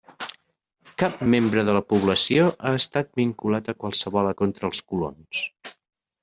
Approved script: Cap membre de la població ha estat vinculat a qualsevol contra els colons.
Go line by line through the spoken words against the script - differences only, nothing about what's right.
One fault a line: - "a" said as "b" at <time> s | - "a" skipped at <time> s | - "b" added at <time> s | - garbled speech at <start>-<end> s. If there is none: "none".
none